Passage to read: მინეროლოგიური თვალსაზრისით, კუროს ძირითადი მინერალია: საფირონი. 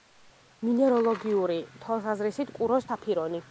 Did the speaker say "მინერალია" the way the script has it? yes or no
no